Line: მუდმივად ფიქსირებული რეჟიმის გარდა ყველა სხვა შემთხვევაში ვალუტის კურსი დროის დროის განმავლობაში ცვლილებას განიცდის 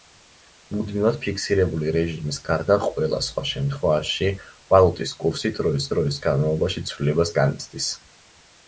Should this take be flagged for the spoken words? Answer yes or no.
no